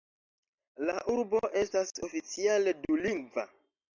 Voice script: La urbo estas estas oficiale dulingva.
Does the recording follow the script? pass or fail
fail